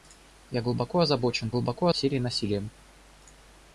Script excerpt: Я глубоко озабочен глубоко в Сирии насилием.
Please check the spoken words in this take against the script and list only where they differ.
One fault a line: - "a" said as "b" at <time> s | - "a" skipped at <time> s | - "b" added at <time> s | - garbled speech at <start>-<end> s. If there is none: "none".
none